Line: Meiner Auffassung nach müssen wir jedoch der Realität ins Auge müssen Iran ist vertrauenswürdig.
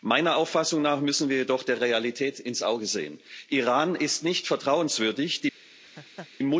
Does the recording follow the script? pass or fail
fail